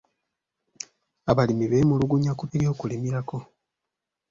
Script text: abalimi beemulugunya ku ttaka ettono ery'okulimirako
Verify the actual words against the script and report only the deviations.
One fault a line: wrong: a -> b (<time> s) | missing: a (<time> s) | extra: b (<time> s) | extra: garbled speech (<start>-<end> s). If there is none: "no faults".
missing: ttaka ettono (2.5 s)